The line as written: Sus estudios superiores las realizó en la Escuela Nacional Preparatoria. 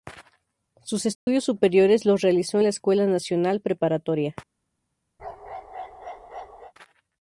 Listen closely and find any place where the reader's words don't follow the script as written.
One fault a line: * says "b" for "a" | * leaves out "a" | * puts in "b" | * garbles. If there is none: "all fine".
* says "los" for "las"